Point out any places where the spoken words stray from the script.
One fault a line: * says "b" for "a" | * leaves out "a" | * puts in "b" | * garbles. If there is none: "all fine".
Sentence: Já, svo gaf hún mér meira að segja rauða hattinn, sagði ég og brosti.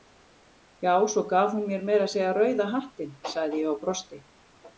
all fine